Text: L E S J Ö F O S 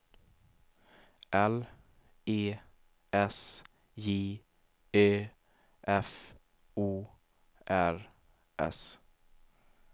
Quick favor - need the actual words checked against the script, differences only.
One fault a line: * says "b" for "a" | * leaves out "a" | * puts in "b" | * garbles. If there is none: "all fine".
* puts in "R"